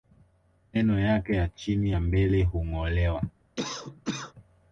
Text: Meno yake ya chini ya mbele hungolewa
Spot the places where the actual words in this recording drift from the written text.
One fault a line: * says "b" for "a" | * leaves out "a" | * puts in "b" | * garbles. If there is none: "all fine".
all fine